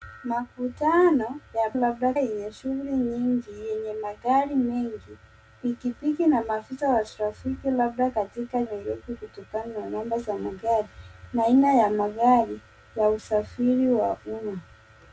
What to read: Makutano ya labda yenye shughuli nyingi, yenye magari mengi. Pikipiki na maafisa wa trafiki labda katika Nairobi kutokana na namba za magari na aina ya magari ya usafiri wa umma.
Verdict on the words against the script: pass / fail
pass